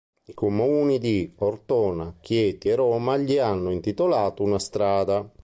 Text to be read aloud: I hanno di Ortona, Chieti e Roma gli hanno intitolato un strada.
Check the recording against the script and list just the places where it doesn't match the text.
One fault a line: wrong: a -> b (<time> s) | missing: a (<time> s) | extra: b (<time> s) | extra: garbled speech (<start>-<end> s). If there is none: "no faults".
wrong: hanno -> comuni (0.3 s)
wrong: un -> una (4.4 s)